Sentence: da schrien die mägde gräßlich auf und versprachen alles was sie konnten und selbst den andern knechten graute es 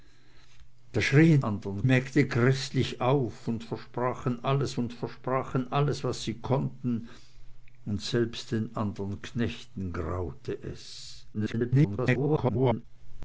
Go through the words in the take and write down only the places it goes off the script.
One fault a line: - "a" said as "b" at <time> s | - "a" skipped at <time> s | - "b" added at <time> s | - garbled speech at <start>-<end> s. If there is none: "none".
- "die" said as "andern" at 1.4 s
- "und versprachen alles" added at 4.8 s
- garbled speech at 11.3-12.8 s